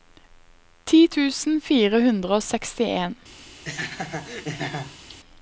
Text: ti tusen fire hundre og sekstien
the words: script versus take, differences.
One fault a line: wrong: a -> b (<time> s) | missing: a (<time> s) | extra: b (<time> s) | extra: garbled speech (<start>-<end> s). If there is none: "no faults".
no faults